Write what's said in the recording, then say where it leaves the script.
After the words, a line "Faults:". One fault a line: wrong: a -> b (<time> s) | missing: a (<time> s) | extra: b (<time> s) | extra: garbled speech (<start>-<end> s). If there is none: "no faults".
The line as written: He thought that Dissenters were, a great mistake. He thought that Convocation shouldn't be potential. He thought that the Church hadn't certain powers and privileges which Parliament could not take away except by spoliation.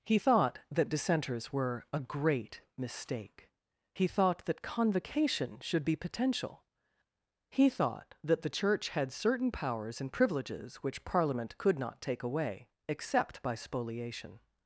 He thought that Dissenters were, a great mistake. He thought that Convocation should be potential. He thought that the Church had certain powers and privileges which Parliament could not take away except by spoliation.
Faults:
wrong: shouldn't -> should (5.6 s)
wrong: hadn't -> had (8.9 s)